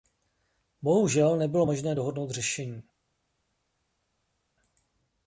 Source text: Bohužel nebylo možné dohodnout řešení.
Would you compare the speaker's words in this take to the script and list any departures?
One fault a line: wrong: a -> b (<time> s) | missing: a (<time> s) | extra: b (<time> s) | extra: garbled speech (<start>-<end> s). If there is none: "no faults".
no faults